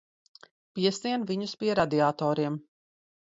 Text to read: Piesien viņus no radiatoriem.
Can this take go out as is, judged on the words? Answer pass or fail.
fail